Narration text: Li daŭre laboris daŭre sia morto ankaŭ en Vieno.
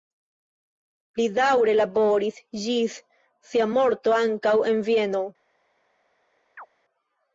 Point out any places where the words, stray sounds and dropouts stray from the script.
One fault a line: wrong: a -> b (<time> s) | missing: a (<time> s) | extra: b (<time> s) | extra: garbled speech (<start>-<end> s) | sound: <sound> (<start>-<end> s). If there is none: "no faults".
wrong: daŭre -> ĝis (2.6 s)
sound: chirp (6.6-6.7 s)